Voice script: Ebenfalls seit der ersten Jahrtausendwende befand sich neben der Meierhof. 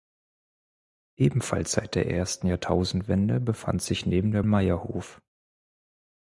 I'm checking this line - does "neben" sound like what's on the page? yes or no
yes